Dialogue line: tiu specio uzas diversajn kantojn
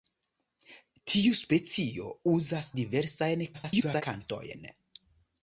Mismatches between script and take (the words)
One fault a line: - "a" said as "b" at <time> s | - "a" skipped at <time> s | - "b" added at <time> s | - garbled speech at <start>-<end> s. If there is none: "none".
- garbled speech at 3.5-4.0 s